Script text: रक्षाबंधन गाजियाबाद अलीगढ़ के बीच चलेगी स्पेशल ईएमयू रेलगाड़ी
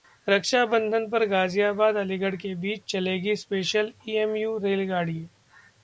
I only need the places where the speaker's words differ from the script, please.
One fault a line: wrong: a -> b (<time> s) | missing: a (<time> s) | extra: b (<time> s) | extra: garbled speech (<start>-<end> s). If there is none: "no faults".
extra: पर (1.1 s)